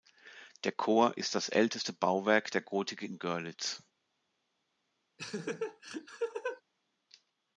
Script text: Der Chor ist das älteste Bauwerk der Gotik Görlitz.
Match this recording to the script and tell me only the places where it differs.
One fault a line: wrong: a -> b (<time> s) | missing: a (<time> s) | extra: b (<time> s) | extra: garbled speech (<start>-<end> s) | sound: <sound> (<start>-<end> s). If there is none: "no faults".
extra: in (3.0 s)
sound: laugh (5.2-6.6 s)